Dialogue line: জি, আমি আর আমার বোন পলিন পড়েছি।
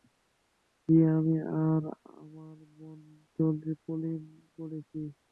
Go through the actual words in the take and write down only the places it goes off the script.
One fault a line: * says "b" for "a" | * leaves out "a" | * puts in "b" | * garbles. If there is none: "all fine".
all fine